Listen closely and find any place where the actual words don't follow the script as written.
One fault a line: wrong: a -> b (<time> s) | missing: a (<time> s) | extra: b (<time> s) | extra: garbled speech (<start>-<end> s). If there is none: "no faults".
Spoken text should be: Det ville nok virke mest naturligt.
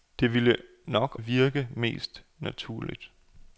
no faults